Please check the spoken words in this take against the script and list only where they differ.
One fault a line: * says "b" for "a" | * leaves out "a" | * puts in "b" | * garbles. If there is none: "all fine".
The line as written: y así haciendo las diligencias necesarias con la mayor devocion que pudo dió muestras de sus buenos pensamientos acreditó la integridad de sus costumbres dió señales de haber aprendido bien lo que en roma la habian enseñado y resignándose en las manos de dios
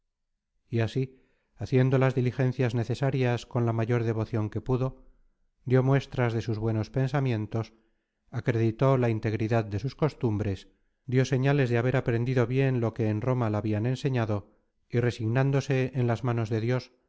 all fine